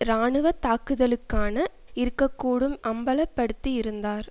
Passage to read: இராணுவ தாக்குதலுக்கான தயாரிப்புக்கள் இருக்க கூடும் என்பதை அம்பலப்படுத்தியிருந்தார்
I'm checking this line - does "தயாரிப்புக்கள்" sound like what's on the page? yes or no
no